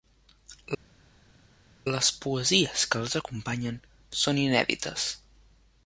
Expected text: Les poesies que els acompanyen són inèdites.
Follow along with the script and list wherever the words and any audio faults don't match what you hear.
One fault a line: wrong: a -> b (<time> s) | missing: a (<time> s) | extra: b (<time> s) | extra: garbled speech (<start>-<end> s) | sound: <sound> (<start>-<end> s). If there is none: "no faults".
no faults